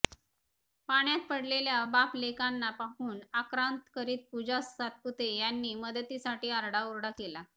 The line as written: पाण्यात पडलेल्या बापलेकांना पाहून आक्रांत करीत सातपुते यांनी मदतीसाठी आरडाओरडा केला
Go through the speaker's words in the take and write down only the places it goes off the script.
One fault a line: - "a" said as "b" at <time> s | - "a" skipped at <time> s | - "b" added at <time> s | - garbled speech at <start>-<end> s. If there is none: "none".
- "पूजा" added at 4.3 s